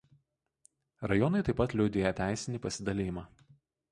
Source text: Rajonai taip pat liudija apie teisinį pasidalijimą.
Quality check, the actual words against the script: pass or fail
fail